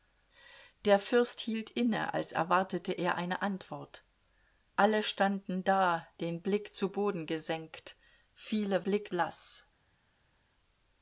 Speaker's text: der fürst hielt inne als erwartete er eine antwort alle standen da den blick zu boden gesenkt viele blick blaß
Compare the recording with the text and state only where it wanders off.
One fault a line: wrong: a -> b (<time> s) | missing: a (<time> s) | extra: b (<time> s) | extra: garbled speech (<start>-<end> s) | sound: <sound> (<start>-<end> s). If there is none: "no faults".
no faults